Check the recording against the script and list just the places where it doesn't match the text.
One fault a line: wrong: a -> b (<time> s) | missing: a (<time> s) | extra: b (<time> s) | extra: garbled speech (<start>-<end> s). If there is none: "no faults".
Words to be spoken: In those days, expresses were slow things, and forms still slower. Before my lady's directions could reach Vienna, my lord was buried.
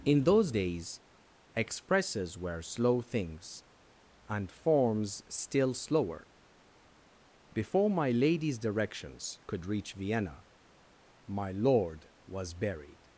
no faults